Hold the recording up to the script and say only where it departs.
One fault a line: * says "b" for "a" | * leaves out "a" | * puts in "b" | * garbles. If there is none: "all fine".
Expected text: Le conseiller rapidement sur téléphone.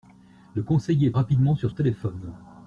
all fine